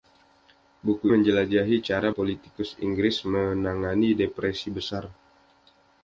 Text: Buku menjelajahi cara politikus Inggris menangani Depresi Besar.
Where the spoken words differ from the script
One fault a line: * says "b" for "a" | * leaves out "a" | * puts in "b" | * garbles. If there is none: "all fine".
all fine